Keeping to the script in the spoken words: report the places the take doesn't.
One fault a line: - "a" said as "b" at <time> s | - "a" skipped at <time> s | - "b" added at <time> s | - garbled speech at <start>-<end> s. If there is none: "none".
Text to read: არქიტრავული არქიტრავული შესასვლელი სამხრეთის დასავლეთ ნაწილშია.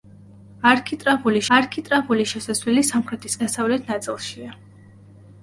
none